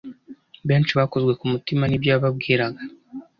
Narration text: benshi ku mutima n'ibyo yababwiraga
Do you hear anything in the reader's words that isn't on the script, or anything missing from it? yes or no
yes